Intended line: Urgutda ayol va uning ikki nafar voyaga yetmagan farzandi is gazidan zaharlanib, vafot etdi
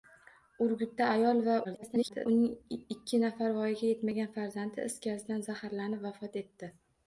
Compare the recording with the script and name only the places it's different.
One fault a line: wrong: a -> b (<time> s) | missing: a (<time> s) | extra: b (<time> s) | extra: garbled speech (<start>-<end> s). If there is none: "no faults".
extra: garbled speech (1.6-2.3 s)